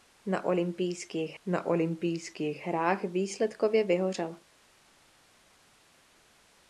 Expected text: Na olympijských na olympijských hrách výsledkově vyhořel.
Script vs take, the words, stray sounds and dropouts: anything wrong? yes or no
no